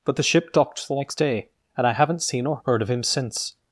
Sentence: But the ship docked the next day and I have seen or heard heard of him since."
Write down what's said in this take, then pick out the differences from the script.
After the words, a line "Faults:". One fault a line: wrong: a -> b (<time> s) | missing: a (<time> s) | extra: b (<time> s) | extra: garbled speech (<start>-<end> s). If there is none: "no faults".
But the ship docked the next day and I haven't seen or heard of him since."
Faults:
wrong: have -> haven't (1.9 s)
missing: heard (2.8 s)